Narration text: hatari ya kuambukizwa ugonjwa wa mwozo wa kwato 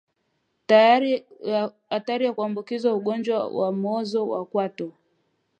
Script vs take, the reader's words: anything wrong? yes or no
no